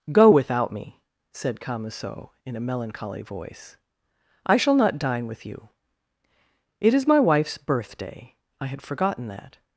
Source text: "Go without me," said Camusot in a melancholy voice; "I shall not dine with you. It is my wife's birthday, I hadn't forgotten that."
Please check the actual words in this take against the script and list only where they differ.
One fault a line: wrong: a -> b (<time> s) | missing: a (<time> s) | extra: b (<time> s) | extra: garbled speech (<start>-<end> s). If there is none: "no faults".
wrong: hadn't -> had (8.7 s)